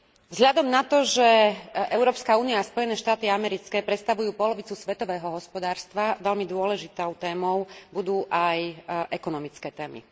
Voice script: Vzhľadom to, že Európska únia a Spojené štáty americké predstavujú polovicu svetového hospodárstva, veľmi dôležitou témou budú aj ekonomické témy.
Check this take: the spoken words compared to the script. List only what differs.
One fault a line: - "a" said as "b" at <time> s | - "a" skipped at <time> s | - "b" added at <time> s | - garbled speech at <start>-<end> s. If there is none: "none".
- "na" added at 0.7 s